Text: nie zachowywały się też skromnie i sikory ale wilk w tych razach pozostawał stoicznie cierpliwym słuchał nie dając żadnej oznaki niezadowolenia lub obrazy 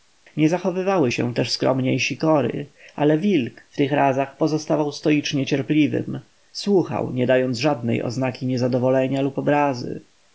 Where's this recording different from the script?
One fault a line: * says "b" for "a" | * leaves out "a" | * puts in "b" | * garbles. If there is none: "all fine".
all fine